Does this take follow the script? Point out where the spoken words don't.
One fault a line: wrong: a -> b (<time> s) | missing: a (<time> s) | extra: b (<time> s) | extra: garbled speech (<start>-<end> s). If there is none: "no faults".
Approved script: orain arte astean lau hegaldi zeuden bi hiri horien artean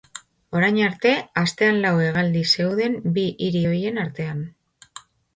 no faults